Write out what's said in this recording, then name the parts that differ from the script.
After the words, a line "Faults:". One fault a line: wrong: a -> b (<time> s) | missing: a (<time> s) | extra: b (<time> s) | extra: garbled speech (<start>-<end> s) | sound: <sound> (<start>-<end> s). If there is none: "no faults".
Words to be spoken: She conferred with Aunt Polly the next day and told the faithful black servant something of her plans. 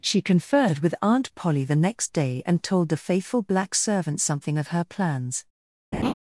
She conferred with Aunt Polly the next day and told the faithful black servant something of her plans.
Faults:
sound: laugh (5.9-6.1 s)